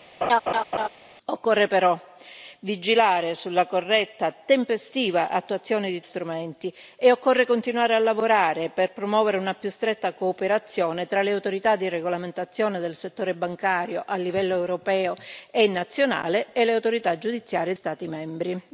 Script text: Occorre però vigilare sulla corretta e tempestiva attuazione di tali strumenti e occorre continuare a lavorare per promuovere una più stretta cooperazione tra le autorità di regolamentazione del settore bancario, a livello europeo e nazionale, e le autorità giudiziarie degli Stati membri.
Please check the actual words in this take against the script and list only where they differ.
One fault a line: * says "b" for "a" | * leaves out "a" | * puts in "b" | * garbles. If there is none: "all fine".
* leaves out "tali"
* leaves out "degli"